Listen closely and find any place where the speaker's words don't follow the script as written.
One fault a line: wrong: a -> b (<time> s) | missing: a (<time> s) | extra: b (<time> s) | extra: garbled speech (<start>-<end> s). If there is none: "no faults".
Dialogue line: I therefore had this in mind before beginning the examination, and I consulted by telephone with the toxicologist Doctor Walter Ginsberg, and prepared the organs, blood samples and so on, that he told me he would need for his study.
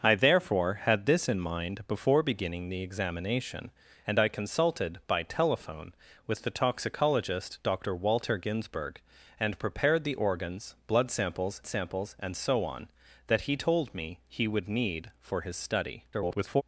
extra: samples (11.7 s)
extra: garbled speech (16.1-16.6 s)